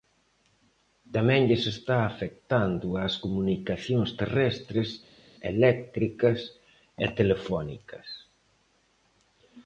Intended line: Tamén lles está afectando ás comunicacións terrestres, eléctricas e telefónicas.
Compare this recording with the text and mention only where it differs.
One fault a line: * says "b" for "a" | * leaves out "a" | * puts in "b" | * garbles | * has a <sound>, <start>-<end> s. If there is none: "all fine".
all fine